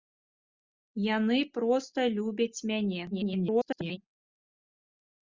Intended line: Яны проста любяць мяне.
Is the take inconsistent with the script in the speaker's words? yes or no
yes